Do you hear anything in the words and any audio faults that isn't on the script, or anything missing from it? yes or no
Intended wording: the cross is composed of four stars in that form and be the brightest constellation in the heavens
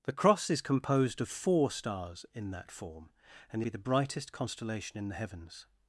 no